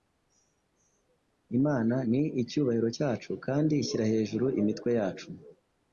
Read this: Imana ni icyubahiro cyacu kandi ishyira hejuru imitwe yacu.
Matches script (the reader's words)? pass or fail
pass